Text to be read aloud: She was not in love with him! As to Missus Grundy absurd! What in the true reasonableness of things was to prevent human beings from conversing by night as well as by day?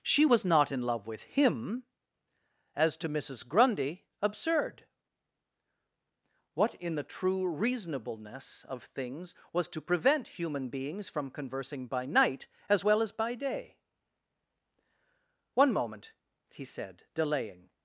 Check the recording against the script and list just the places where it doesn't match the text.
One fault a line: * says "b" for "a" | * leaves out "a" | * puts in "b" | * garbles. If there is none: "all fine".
* puts in "One moment he said delaying"